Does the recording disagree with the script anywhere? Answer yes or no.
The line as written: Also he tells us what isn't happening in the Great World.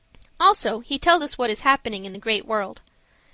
yes